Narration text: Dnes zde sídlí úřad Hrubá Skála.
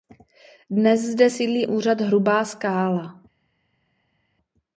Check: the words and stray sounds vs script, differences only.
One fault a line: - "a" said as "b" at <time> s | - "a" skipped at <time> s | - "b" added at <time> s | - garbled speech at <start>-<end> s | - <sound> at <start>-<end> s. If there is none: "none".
none